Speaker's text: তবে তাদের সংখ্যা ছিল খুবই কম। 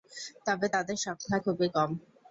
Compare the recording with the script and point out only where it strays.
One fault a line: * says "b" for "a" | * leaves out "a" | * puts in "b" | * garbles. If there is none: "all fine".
* leaves out "ছিল"